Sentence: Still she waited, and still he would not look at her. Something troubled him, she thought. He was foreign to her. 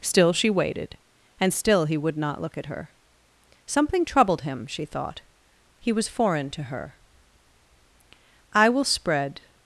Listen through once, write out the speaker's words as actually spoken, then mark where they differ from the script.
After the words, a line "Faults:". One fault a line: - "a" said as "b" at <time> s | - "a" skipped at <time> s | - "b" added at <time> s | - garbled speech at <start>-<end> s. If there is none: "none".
Still she waited, and still he would not look at her. Something troubled him, she thought. He was foreign to her. "I will spread
Faults:
- "I will spread" added at 8.5 s